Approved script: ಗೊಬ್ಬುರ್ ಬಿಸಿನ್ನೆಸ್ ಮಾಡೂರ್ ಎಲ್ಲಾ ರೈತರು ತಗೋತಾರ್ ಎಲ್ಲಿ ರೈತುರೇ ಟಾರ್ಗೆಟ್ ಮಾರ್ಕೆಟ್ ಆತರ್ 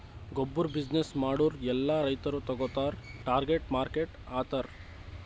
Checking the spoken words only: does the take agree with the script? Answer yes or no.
no